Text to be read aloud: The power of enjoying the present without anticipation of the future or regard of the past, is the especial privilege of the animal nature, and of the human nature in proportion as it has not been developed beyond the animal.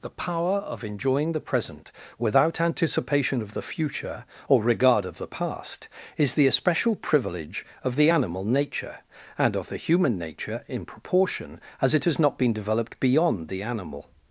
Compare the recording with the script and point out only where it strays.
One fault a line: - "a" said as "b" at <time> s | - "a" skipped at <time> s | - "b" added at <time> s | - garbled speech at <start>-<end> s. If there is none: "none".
none